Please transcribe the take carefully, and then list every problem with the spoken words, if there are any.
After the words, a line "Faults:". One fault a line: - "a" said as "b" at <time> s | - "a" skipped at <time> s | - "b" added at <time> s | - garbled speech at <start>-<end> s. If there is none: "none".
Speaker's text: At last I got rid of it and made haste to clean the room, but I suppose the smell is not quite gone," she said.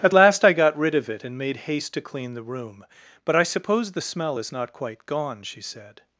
At last I got rid of it and made haste to clean the room, but I suppose the smell is not quite gone," she said.
Faults:
none